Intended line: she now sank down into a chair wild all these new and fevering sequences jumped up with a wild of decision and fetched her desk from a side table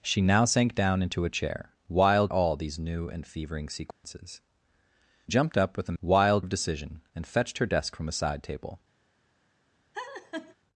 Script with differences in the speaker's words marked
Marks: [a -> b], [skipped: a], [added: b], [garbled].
she now sank down into a chair wild all these new and fevering sequences jumped up with a wild of decision and fetched her desk from a side table